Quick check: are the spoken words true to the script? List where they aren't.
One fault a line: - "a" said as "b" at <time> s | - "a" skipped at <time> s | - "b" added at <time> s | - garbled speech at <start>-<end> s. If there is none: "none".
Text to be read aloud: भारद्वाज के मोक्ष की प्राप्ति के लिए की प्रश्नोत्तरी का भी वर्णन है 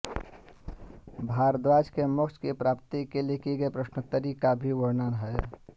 - "गई" added at 3.6 s